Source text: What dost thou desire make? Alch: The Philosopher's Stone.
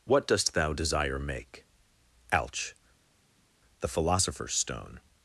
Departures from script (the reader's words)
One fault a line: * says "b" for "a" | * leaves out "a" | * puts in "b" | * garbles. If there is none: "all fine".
all fine